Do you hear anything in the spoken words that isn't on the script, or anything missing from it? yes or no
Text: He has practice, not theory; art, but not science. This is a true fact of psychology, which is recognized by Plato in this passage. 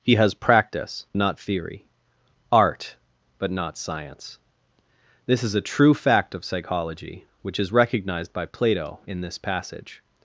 no